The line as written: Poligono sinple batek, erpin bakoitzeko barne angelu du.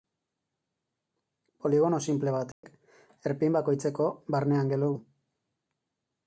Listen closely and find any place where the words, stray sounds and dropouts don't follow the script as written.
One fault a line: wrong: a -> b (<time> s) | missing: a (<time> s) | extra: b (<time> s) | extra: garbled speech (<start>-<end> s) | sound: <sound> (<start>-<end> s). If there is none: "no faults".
sound: dropout (2.5-2.6 s)